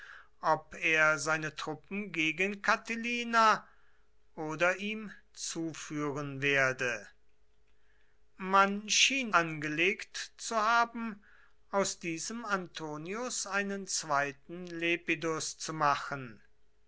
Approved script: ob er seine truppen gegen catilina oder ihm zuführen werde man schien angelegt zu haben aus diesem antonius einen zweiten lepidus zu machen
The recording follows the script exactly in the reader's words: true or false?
true